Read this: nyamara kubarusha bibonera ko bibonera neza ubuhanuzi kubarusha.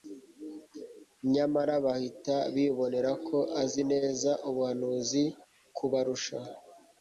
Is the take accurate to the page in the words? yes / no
no